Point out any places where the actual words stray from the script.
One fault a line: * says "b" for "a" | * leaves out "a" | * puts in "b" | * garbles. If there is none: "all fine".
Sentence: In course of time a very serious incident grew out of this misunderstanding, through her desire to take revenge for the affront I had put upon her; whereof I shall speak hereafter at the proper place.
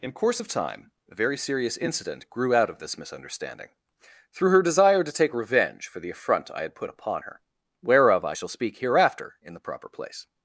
* says "in" for "at"